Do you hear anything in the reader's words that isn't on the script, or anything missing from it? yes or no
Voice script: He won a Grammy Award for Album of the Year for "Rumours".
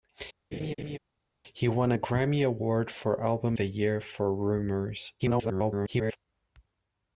yes